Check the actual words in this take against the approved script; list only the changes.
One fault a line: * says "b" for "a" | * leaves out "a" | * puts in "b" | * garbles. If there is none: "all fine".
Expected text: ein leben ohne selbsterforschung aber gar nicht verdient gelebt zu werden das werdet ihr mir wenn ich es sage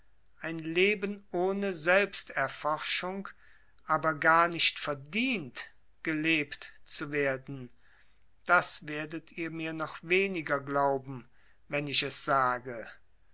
* puts in "noch weniger glauben"